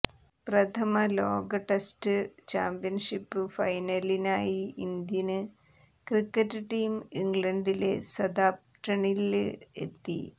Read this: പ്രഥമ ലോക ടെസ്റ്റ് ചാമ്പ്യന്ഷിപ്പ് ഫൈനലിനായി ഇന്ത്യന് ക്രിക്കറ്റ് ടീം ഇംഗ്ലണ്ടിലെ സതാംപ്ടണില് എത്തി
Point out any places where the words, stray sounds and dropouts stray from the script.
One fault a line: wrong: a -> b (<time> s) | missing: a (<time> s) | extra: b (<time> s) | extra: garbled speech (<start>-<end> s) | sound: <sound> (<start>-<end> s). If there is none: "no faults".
no faults